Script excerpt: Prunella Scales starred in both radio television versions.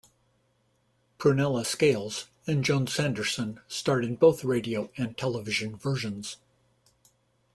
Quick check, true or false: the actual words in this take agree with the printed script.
false